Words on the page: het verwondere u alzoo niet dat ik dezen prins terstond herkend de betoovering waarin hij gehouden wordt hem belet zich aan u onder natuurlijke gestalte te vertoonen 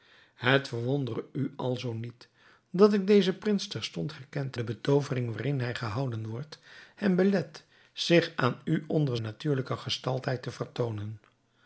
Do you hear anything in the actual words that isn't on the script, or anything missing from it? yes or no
no